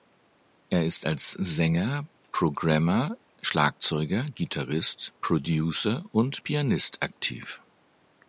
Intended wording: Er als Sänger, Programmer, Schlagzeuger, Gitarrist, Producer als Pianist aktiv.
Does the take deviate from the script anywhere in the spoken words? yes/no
yes